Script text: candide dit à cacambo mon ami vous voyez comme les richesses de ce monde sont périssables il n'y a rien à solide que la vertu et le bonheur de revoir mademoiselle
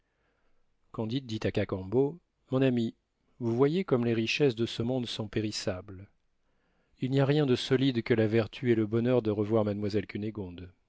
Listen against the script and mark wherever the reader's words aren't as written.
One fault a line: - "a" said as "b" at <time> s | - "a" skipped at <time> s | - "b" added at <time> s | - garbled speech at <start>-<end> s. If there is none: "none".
- "à" said as "de" at 7.5 s